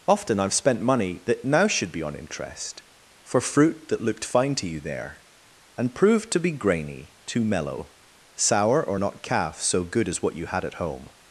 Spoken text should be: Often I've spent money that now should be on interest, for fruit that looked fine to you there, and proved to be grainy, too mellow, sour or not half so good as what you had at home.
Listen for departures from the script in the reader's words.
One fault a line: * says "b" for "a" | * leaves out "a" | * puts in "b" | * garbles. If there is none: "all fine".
* says "calf" for "half"